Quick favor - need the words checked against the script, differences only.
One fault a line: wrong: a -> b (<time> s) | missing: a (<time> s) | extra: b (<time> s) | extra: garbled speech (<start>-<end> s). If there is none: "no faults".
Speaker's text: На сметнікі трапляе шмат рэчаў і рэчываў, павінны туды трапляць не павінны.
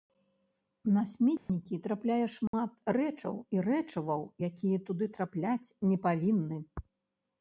wrong: павінны -> якія (4.5 s)